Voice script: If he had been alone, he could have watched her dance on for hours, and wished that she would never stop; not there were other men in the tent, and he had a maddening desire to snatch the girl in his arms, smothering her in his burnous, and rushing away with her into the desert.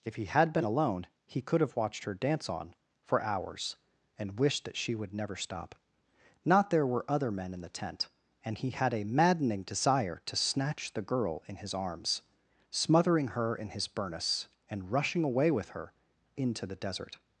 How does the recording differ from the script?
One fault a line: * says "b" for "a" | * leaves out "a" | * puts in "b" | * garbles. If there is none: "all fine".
all fine